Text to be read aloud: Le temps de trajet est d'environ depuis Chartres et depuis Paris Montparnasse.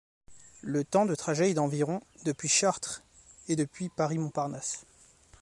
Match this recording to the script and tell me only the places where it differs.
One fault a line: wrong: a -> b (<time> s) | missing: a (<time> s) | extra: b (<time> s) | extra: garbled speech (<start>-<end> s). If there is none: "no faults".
no faults